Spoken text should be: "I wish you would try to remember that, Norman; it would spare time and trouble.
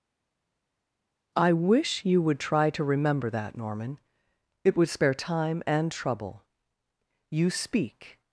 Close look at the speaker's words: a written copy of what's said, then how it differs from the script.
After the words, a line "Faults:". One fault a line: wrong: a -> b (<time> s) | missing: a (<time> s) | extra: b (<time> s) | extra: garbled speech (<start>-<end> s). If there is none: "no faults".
"I wish you would try to remember that, Norman; it would spare time and trouble. You speak
Faults:
extra: You speak (7.3 s)